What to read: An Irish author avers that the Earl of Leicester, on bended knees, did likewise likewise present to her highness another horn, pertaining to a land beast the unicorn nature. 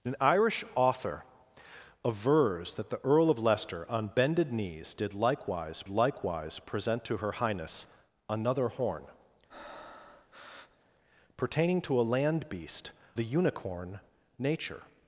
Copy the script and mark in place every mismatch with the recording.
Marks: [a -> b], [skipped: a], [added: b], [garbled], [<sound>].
An Irish author avers that the Earl of Leicester, on bended knees, did likewise likewise present to her highness another horn, [breath] pertaining to a land beast the unicorn nature.